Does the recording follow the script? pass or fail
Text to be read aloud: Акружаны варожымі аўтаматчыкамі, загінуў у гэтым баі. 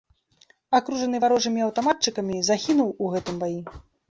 pass